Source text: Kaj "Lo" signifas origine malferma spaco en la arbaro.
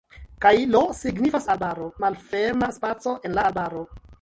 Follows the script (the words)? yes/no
no